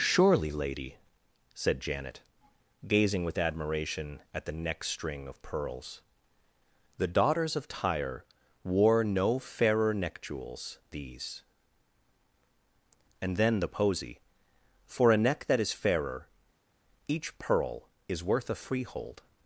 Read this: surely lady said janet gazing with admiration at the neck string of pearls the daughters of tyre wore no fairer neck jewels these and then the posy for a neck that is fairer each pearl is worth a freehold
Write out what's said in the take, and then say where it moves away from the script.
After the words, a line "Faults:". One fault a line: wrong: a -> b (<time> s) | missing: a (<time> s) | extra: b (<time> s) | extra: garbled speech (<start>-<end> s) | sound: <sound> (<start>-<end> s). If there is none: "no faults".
surely lady said janet gazing with admiration at the neck string of pearls the daughters of tyre wore no fairer neck jewels these and then the posy for a neck that is fairer each pearl is worth a freehold
Faults:
no faults